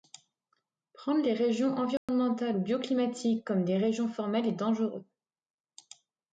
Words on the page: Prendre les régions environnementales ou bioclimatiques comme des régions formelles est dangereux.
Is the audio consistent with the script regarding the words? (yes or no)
yes